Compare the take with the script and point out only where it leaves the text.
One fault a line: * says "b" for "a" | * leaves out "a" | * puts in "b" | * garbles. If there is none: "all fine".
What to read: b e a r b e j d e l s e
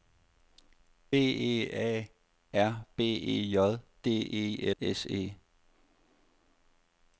* leaves out "l"